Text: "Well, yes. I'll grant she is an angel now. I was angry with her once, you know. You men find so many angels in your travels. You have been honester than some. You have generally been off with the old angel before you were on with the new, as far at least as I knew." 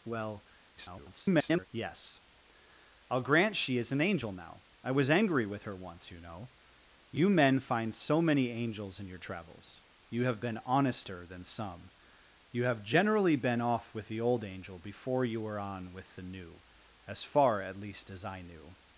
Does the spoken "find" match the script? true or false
true